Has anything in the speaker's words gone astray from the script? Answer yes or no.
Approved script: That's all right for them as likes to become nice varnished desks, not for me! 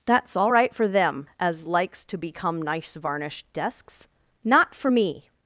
no